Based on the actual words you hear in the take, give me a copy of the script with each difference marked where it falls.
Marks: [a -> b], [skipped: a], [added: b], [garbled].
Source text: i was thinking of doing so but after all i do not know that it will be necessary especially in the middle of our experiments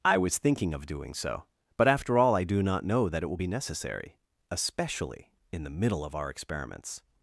i was thinking of doing so but after all i do not know that it will be necessary especially in the middle of our experiments